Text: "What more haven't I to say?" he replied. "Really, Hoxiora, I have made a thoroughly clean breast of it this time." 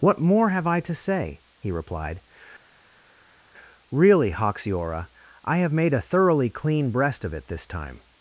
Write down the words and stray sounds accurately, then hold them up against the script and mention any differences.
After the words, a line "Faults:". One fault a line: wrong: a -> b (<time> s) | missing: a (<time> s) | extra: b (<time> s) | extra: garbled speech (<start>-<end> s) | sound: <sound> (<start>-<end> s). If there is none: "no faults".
"What more have I to say?" he replied. "Really, Hoxiora, I have made a thoroughly clean breast of it this time."
Faults:
wrong: haven't -> have (0.5 s)